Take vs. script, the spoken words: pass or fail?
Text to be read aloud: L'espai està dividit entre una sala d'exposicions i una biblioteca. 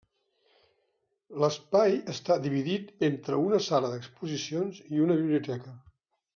pass